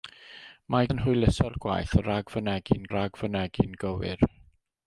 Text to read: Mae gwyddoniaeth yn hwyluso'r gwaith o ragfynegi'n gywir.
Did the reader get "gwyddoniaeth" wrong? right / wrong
wrong